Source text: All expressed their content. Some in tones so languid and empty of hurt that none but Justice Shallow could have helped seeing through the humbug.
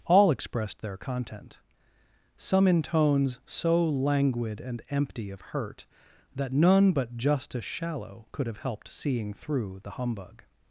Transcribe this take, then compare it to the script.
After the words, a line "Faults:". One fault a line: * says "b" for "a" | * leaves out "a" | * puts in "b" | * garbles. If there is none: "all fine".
All expressed their content. Some in tones so languid and empty of hurt that none but Justice Shallow could have helped seeing through the humbug.
Faults:
all fine